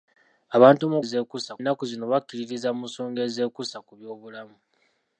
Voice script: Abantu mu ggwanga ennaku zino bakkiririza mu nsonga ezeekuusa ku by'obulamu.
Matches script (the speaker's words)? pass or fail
fail